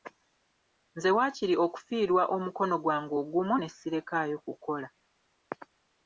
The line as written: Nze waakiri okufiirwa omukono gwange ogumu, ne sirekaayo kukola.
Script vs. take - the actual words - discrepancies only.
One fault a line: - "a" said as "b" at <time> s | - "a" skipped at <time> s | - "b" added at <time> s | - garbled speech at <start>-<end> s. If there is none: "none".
none